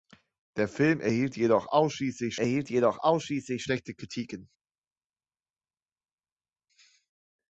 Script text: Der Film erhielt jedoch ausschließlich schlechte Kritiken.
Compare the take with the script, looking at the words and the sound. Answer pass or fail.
fail